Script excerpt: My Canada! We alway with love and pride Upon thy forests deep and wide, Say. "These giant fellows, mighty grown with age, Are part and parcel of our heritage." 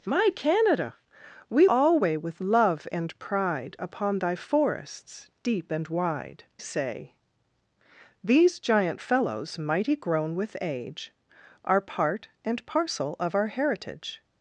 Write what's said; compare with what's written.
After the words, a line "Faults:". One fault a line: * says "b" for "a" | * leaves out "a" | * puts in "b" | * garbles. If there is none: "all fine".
My Canada! We alway with love and pride Upon thy forests deep and wide, Say. "These giant fellows, mighty grown with age, Are part and parcel of our heritage."
Faults:
all fine